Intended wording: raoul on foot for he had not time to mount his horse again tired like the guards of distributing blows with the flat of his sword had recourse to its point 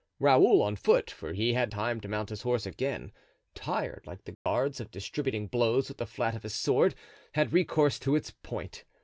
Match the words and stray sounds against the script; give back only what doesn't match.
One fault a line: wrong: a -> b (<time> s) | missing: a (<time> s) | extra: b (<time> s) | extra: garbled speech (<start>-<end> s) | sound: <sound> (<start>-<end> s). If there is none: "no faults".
missing: not (1.7 s)
sound: dropout (4.3-4.5 s)